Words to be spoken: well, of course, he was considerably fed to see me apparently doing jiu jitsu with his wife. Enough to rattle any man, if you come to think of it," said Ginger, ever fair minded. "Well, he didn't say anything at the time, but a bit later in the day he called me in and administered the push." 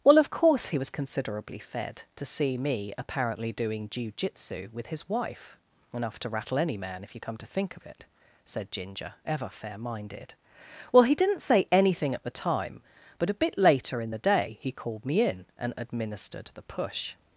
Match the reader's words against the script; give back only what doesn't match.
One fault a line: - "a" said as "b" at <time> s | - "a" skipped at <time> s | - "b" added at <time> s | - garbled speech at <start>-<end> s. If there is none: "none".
none